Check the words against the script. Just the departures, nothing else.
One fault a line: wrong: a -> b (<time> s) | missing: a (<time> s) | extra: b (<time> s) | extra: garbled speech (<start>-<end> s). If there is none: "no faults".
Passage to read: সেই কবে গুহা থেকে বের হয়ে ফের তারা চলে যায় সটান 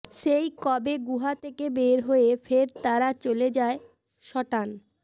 no faults